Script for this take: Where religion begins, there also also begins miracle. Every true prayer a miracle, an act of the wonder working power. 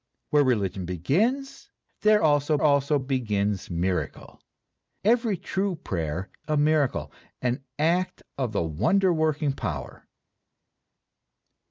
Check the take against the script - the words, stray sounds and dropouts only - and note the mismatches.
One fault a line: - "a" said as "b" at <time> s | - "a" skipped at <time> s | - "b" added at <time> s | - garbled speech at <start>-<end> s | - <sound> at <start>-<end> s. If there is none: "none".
none